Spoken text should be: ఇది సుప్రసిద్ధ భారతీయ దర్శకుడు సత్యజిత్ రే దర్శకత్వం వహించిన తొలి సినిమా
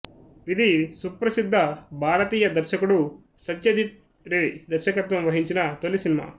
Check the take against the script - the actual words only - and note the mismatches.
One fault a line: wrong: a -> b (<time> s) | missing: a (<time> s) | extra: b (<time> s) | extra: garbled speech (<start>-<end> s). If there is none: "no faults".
no faults